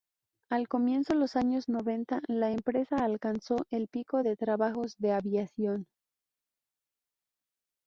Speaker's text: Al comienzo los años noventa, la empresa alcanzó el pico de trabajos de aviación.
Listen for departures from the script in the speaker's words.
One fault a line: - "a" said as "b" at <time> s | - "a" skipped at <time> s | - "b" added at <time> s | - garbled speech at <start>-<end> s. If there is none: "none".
none